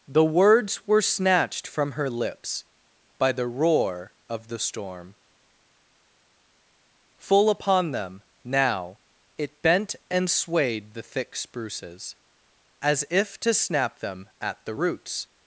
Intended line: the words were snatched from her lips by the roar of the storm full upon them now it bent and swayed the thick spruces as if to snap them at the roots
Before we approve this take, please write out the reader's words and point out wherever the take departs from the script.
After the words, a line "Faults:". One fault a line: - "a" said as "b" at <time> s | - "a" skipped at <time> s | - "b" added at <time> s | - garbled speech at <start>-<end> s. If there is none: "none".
the words were snatched from her lips by the roar of the storm full upon them now it bent and swayed the thick spruces as if to snap them at the roots
Faults:
none